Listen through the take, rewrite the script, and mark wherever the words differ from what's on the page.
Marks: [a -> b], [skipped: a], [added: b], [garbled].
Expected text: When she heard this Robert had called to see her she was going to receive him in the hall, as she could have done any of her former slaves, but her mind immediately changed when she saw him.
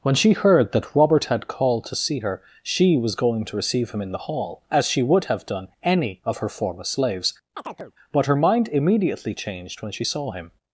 When she heard [this -> that] Robert had called to see her she was going to receive him in the hall, as she [could -> would] have done any of her former slaves, but her mind immediately changed when she saw him.